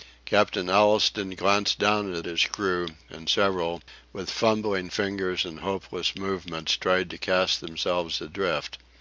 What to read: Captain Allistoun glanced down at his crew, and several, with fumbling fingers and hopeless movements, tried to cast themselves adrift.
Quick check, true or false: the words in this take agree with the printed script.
true